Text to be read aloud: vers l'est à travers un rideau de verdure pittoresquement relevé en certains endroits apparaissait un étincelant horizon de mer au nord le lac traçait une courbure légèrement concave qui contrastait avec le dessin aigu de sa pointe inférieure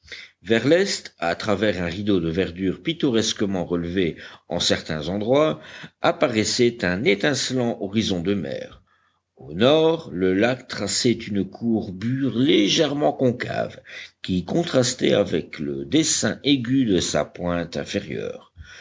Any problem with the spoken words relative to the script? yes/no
no